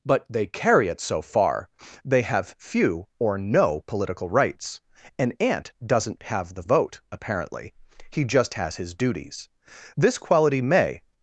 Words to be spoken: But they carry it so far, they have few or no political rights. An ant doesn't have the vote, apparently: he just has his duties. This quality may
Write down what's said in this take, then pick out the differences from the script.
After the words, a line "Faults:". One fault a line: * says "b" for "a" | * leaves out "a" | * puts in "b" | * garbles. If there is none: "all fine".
But they carry it so far, they have few or no political rights. An ant doesn't have the vote, apparently: he just has his duties. This quality may
Faults:
all fine